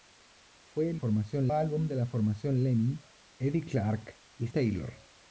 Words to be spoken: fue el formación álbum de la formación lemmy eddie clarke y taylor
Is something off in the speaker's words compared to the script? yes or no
no